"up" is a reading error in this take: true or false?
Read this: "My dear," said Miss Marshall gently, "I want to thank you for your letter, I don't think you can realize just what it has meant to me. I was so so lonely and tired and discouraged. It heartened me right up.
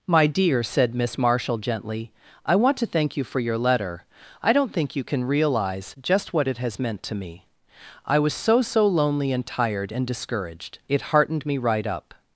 false